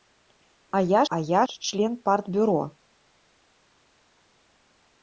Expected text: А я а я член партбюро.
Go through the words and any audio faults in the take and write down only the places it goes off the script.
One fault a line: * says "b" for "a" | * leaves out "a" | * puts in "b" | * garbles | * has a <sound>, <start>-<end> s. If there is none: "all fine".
all fine